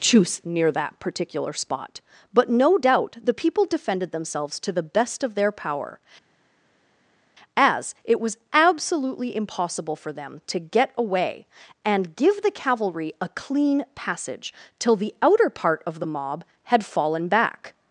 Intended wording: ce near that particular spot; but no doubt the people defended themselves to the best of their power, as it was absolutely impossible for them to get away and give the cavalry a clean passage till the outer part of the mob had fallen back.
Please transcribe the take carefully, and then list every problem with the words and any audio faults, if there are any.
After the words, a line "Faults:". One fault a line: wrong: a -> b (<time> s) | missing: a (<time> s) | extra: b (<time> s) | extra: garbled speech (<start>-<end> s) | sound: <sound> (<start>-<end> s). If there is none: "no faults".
choose near that particular spot; but no doubt the people defended themselves to the best of their power, as it was absolutely impossible for them to get away and give the cavalry a clean passage till the outer part of the mob had fallen back.
Faults:
wrong: ce -> choose (0.0 s)